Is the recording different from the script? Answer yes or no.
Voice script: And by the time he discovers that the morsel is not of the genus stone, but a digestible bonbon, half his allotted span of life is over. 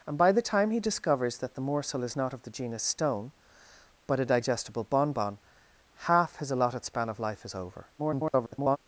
yes